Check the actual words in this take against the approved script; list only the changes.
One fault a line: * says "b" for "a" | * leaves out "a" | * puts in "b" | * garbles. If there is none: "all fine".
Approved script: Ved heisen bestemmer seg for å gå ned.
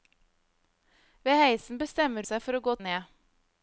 all fine